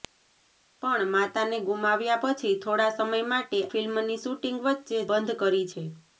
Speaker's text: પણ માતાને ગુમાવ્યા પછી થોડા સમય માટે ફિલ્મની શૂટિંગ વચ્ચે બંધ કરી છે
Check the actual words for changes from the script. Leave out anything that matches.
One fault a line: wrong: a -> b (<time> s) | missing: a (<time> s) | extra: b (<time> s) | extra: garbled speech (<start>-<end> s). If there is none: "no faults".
no faults